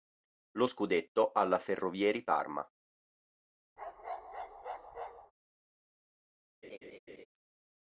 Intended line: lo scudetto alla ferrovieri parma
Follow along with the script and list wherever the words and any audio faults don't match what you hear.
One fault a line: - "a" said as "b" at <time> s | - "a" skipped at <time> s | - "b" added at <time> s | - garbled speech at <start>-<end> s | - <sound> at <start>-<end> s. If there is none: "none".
- bark at 3.8-5.3 s
- laugh at 6.6-7.3 s